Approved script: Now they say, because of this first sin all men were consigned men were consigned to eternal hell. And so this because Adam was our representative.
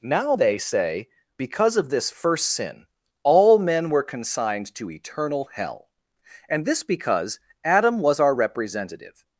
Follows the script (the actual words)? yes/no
no